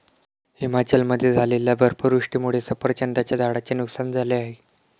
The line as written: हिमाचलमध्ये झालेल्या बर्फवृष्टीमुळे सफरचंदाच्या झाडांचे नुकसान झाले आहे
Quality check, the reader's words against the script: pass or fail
pass